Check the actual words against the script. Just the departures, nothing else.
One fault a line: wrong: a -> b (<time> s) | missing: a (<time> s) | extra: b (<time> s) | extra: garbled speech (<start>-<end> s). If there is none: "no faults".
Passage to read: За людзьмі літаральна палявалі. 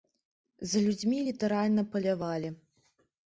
no faults